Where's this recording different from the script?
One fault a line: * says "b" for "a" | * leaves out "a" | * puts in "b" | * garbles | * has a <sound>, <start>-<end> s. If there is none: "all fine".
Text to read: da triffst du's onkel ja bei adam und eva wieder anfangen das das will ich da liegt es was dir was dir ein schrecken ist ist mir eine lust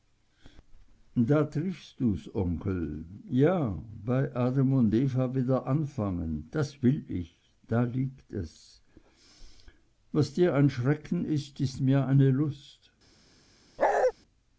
* leaves out "das"
* leaves out "was dir"
* has a bark, 13.8-14.1 s